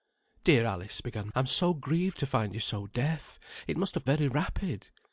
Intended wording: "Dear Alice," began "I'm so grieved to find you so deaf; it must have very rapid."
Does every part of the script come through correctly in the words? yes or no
yes